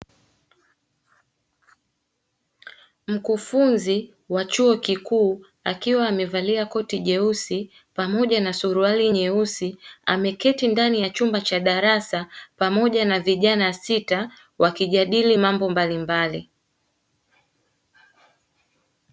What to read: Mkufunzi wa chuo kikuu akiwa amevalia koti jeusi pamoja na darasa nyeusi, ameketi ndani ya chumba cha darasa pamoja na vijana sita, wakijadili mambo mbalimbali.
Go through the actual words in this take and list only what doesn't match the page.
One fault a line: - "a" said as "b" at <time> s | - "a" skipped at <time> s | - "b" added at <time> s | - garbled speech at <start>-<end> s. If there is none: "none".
- "darasa" said as "suruali" at 8.5 s